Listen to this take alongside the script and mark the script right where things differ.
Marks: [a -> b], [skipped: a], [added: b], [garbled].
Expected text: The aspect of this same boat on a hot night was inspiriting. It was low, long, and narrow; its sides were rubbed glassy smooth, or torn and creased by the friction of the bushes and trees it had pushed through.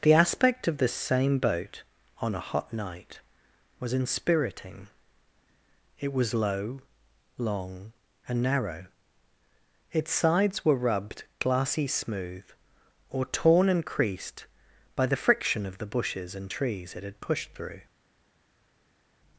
The aspect of this same boat on a hot night was inspiriting. It was low, long, and narrow; its sides were rubbed glassy smooth, or torn and creased by the friction of the bushes and trees it had pushed through.